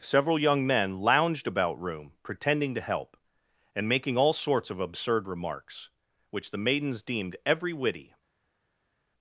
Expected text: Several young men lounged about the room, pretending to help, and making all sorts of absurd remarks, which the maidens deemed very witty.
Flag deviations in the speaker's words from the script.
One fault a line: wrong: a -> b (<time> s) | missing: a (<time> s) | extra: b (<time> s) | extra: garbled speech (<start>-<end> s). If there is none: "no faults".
missing: the (1.8 s)
wrong: very -> every (7.5 s)